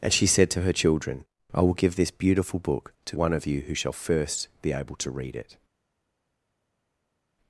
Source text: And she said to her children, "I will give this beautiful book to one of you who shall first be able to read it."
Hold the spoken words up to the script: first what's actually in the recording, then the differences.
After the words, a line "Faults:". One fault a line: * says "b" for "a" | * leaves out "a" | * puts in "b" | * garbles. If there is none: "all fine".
And she said to her children, "I will give this beautiful book to one of you who shall first be able to read it."
Faults:
all fine